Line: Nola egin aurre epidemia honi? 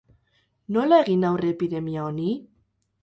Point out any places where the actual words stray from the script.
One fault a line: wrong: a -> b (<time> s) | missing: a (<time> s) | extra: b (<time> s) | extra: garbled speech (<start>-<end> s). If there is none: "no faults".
no faults